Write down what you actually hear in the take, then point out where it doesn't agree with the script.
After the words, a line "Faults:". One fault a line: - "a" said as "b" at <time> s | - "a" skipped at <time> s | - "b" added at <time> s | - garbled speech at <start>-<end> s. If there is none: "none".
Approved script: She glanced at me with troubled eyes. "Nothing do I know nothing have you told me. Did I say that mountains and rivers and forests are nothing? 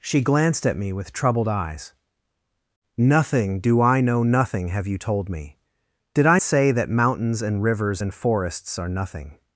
She glanced at me with troubled eyes. "Nothing do I know nothing have you told me. Did I say that mountains and rivers and forests are nothing?
Faults:
none